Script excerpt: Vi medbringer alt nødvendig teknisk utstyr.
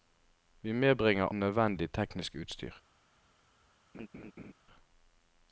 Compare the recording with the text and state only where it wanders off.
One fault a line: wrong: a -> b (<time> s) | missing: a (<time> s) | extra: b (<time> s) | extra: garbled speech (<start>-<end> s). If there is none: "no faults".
missing: alt (1.2 s)